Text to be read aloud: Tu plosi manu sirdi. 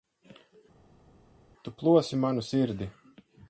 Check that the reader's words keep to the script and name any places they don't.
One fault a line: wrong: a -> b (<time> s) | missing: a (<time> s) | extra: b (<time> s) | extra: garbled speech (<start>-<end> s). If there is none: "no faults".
no faults